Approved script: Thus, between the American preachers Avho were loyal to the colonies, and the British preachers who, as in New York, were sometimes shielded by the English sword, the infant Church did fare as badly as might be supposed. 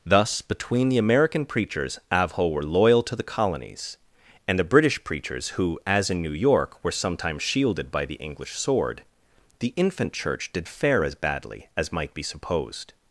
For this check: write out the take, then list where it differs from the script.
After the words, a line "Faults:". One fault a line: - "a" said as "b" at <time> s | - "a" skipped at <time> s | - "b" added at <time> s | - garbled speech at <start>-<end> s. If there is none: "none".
Thus, between the American preachers Avho were loyal to the colonies, and the British preachers who, as in New York, were sometimes shielded by the English sword, the infant Church did fare as badly as might be supposed.
Faults:
none